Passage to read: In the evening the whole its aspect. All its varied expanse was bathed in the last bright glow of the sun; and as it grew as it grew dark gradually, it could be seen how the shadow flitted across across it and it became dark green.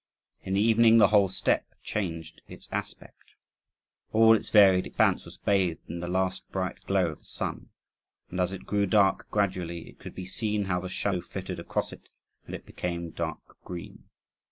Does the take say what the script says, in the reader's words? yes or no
no